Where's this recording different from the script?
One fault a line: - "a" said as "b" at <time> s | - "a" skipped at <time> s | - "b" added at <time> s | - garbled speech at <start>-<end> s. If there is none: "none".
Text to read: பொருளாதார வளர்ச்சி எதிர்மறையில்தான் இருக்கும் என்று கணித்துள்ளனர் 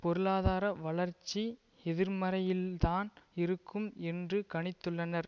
none